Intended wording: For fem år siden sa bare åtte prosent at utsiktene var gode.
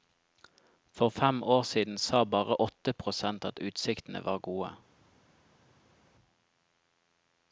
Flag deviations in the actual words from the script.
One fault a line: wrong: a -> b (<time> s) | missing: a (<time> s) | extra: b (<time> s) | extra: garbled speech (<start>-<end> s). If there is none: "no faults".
no faults